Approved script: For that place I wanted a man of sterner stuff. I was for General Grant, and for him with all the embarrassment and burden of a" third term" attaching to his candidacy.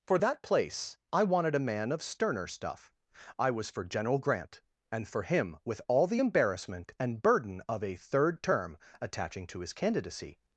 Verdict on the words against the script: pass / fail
pass